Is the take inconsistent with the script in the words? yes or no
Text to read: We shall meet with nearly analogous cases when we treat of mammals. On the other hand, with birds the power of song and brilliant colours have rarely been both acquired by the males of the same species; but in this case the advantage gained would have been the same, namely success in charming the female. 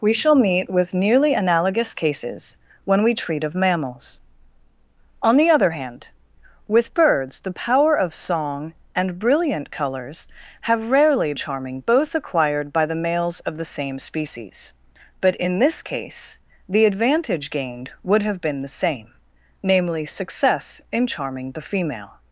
yes